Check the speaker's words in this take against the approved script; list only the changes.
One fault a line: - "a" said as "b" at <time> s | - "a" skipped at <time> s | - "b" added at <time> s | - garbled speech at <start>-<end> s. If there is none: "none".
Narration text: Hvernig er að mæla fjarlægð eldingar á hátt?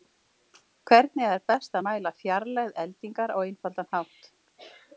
- "best" added at 1.5 s
- "einfaldan" added at 3.5 s